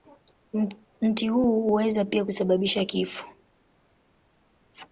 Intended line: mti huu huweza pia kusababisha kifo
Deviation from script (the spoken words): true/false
false